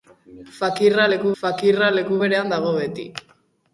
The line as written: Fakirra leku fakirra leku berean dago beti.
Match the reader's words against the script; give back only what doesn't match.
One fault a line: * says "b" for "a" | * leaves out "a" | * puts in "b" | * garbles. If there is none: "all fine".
all fine